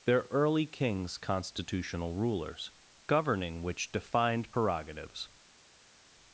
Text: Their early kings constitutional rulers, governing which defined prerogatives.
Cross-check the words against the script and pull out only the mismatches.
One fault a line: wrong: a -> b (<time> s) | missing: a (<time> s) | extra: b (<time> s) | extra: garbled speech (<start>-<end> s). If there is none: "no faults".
no faults